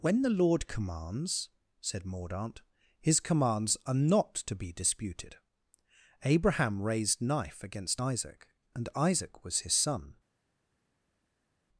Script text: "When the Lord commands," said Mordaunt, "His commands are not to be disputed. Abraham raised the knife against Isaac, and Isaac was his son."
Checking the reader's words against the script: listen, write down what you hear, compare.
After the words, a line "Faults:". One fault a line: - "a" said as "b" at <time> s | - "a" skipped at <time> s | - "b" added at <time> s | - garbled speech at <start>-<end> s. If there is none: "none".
"When the Lord commands," said Mordaunt, "His commands are not to be disputed. Abraham raised knife against Isaac, and Isaac was his son."
Faults:
- "the" skipped at 7.2 s